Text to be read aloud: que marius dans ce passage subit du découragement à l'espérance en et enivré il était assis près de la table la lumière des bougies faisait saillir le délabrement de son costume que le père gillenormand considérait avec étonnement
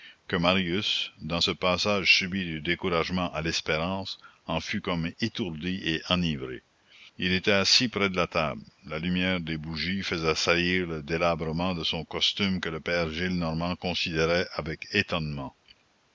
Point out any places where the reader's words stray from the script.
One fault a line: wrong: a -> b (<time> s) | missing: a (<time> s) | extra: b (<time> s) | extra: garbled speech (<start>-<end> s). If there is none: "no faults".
extra: fut comme étourdi (4.6 s)